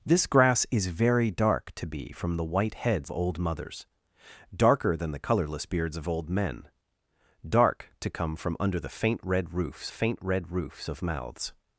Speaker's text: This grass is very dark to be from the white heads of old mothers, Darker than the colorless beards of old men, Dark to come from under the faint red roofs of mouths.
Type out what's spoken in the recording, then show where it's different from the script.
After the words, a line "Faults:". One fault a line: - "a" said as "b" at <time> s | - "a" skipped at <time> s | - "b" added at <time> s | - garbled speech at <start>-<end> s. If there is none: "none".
This grass is very dark to be from the white heads old mothers, Darker than the colorless beards of old men, Dark to come from under the faint red roofs faint red roofs of mouths.
Faults:
- "of" skipped at 3.1 s
- "faint red roofs" added at 9.9 s